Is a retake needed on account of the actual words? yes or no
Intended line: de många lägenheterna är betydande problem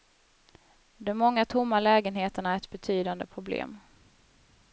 yes